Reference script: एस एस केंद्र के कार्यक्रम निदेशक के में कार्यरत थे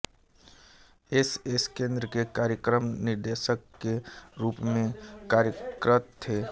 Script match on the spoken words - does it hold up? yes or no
no